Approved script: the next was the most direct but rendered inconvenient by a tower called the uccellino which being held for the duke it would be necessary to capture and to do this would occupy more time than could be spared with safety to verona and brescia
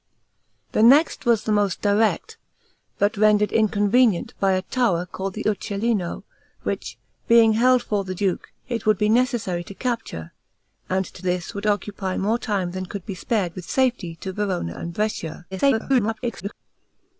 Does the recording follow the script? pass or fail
fail